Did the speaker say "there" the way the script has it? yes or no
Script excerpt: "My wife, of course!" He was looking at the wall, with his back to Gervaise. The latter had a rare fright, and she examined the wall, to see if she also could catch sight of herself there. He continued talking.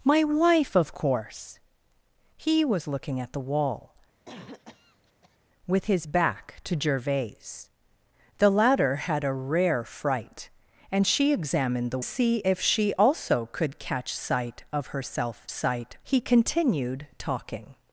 no